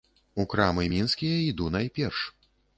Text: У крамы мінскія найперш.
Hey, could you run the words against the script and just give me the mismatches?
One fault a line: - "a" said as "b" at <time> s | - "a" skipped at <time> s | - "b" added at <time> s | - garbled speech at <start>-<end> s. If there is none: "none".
- "іду" added at 1.5 s